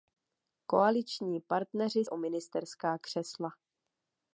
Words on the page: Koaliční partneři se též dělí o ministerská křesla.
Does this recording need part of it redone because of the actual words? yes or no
yes